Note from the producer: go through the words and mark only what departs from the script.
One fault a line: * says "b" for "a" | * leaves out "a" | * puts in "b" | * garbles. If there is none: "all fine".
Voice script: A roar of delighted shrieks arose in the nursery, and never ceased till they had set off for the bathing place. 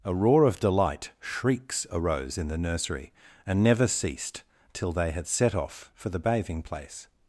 * says "delight" for "delighted"